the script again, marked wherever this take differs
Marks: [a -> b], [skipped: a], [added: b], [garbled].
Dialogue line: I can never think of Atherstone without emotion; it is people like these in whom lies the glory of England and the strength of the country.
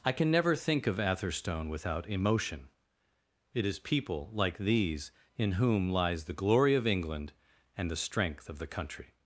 I can never think of Atherstone without emotion; it is people like these in whom lies the glory of England and the strength of the country.